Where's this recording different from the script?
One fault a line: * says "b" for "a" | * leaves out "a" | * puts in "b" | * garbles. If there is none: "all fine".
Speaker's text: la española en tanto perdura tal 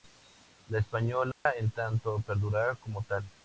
* puts in "como"